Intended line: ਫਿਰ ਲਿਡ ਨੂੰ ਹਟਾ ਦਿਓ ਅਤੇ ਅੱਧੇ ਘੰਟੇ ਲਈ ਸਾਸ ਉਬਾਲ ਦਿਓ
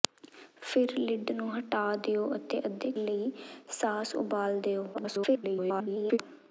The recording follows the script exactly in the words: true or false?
false